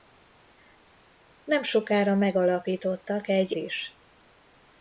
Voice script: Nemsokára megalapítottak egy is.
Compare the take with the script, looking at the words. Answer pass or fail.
pass